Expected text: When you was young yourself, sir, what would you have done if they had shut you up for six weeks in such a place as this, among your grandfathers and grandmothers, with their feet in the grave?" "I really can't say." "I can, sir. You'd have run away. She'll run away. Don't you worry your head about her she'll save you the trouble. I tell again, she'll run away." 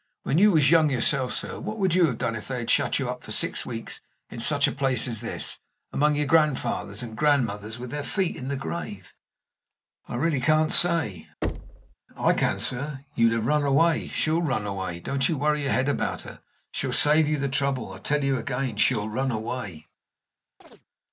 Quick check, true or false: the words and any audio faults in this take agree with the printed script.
false